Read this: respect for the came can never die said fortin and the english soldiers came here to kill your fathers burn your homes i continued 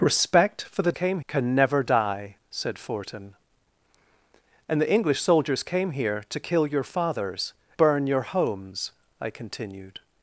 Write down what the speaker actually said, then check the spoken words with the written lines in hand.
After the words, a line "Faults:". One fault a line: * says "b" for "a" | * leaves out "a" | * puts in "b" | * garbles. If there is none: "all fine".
respect for the came can never die said fortin and the english soldiers came here to kill your fathers burn your homes i continued
Faults:
all fine